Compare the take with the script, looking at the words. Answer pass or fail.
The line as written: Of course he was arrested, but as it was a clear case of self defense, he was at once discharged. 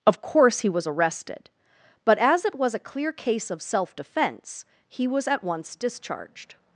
pass